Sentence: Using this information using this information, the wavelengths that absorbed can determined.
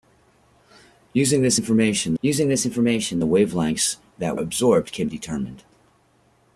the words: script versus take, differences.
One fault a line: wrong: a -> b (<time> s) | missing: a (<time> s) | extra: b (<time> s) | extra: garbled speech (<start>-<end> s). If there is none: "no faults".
no faults